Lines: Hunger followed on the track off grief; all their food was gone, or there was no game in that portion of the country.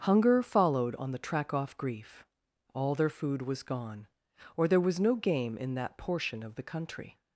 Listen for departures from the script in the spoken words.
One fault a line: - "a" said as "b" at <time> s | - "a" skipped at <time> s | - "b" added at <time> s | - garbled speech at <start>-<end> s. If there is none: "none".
none